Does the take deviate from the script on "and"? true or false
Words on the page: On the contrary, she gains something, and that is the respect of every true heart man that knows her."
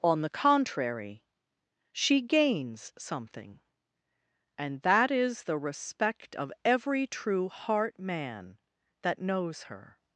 false